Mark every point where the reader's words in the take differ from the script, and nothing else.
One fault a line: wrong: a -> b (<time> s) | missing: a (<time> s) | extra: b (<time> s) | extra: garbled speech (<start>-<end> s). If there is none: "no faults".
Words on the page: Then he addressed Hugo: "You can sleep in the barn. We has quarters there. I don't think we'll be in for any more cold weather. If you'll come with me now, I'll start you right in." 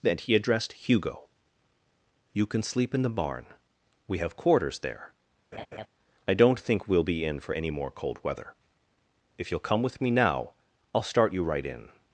wrong: has -> have (4.2 s)